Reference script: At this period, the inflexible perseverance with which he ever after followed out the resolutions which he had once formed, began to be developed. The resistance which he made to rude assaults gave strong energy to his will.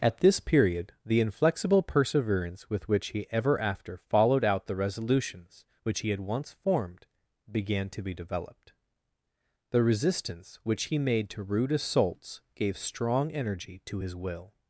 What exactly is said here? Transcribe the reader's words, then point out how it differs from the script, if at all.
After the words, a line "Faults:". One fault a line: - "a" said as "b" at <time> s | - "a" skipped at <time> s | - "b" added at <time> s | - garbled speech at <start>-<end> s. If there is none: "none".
At this period, the inflexible perseverance with which he ever after followed out the resolutions which he had once formed, began to be developed. The resistance which he made to rude assaults gave strong energy to his will.
Faults:
none